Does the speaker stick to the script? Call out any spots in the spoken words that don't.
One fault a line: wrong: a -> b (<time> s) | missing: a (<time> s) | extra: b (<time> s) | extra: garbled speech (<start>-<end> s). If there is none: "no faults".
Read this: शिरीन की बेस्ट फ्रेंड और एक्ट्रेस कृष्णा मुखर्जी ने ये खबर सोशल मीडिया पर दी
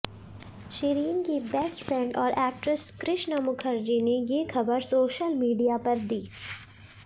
no faults